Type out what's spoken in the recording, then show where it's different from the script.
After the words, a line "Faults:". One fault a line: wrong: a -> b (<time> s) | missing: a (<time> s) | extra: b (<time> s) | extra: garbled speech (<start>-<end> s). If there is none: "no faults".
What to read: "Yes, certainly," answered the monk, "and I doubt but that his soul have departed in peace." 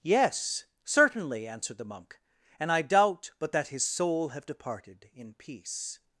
"Yes, certainly," answered the monk, "and I doubt but that his soul have departed in peace."
Faults:
no faults